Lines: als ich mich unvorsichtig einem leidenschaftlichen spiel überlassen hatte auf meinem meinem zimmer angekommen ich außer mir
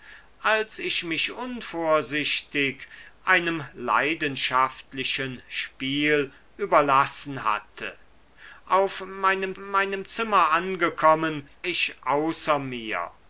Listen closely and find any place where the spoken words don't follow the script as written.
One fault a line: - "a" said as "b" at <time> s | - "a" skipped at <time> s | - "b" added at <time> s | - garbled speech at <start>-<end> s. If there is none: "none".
none